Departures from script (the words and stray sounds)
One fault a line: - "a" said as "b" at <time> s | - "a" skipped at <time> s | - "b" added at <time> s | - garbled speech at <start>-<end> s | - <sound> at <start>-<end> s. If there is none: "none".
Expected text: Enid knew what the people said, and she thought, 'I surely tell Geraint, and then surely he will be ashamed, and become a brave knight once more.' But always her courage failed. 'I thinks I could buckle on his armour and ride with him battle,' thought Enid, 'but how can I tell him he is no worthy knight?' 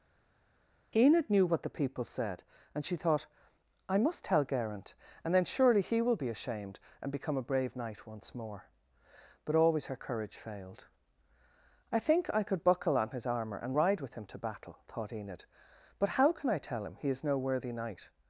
- "surely" said as "must" at 4.0 s
- "thinks" said as "think" at 12.0 s
- "to" added at 14.3 s